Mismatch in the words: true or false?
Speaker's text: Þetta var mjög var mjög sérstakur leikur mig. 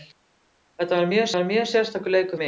false